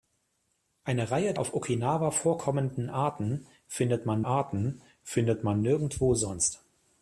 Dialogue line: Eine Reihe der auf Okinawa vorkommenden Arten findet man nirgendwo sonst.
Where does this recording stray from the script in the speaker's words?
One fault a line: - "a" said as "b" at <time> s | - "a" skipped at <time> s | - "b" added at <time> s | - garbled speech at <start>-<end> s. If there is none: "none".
- "der" skipped at 1.4 s
- "Arten findet man" added at 4.2 s